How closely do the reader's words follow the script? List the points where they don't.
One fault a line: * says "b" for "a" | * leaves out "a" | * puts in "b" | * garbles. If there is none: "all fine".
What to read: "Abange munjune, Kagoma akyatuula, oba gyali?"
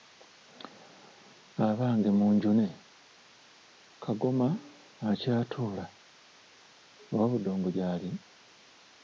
* puts in "budongo"